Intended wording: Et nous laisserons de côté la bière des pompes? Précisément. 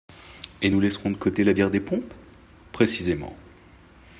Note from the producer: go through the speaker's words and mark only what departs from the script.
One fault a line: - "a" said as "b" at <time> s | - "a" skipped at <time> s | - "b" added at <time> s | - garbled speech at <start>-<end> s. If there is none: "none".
none